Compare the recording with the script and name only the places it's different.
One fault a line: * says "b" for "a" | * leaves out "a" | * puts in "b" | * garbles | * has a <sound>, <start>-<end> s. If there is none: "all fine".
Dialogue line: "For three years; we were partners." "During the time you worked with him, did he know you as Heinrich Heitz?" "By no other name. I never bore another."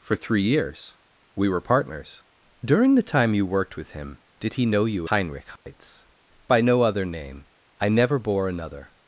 * leaves out "as"
* has a dropout, 5.6-5.7 s